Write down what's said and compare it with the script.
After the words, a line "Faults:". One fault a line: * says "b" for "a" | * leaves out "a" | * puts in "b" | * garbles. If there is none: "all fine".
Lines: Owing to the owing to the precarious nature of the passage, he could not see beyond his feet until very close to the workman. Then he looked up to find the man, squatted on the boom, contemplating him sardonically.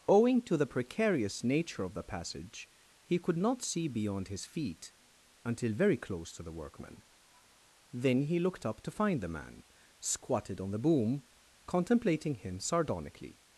Owing to the precarious nature of the passage, he could not see beyond his feet until very close to the workman. Then he looked up to find the man, squatted on the boom, contemplating him sardonically.
Faults:
* leaves out "owing to the"